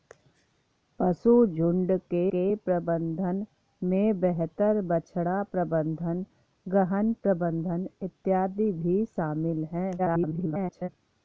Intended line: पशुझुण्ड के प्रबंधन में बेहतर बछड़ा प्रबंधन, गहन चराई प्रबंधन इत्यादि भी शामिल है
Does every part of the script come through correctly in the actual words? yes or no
no